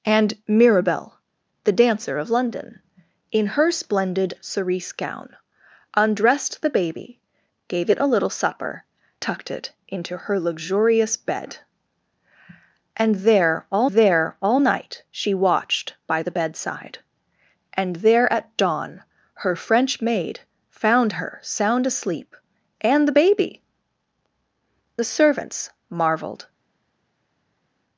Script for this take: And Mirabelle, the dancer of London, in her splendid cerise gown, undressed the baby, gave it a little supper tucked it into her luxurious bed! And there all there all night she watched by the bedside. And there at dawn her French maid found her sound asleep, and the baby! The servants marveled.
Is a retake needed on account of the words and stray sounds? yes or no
no